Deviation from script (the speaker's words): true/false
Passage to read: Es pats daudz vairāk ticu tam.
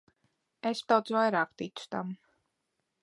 true